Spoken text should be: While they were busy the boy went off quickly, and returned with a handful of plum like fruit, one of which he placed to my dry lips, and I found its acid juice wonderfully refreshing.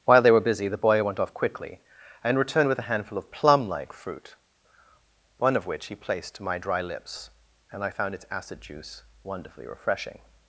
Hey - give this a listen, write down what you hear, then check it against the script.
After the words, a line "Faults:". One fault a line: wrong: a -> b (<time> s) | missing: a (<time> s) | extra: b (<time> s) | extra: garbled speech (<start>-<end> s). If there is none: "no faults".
While they were busy the boy went off quickly, and returned with a handful of plum like fruit, one of which he placed to my dry lips, and I found its acid juice wonderfully refreshing.
Faults:
no faults